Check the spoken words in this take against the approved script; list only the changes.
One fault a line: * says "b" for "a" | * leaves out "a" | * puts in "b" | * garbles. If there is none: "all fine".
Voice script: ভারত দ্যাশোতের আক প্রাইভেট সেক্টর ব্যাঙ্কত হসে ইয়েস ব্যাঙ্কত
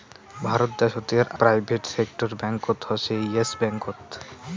* leaves out "আক"